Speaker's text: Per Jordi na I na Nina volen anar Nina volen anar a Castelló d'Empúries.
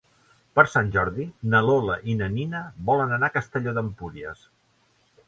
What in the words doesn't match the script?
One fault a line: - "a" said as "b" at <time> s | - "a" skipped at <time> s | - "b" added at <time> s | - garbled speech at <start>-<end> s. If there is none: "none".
- "Sant" added at 0.8 s
- "Lola" added at 1.7 s
- "Nina volen anar" skipped at 3.3 s